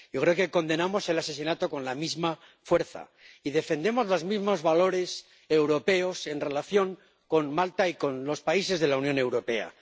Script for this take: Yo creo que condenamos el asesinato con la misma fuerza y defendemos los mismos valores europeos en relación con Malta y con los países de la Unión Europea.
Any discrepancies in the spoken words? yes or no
no